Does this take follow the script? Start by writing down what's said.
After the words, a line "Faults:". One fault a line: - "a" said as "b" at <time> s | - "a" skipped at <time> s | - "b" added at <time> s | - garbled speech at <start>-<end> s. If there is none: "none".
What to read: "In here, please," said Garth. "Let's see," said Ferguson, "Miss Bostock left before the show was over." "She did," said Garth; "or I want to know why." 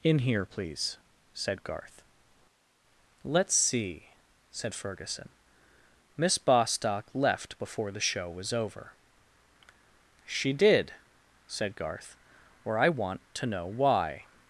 "In here, please," said Garth. "Let's see," said Ferguson, "Miss Bostock left before the show was over." "She did," said Garth; "or I want to know why."
Faults:
none